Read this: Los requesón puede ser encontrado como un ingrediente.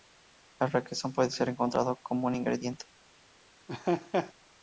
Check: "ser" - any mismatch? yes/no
no